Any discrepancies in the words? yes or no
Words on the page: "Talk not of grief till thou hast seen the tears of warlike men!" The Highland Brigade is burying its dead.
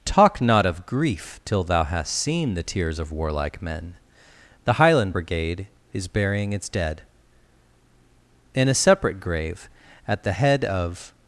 yes